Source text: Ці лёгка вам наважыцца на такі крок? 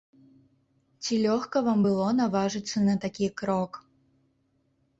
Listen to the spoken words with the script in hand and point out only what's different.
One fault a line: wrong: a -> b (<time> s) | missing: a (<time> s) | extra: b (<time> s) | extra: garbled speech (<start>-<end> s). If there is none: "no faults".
extra: было (1.9 s)